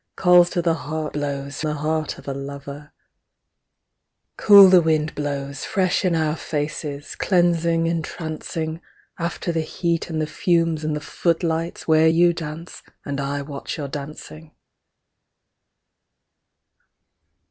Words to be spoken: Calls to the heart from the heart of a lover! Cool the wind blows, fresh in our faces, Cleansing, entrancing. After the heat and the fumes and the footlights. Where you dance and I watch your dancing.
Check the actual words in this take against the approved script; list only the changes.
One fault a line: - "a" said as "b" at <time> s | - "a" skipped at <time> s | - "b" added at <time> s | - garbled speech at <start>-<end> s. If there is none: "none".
- "from" said as "blows" at 1.1 s